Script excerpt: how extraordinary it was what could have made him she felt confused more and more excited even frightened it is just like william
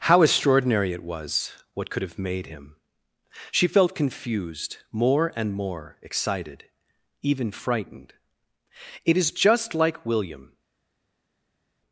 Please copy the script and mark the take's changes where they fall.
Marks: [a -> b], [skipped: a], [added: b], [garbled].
how extraordinary it was what could have made him she felt confused more and more excited even frightened it is just like william